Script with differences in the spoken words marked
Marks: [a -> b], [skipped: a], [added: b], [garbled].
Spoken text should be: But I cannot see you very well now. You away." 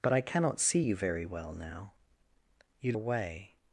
But I cannot see you very well now. You away."